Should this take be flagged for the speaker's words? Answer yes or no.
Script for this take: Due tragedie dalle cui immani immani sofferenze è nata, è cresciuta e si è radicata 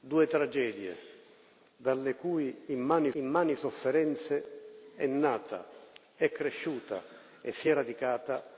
no